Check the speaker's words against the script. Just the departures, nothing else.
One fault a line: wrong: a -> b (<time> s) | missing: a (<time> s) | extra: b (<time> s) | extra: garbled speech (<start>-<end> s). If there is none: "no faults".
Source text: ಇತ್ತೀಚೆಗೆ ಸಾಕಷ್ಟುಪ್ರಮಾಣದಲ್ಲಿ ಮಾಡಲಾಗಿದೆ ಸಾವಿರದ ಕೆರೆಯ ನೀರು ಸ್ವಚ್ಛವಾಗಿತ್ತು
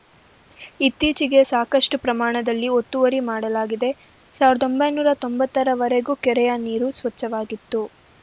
extra: ಒತ್ತುವರಿ (2.8 s)
extra: ಒಂಬೈನೂರ ತೊಂಬತ್ತರ ವರೆಗೂ (4.7 s)